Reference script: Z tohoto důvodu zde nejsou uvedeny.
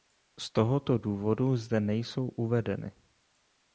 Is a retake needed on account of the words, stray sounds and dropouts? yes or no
no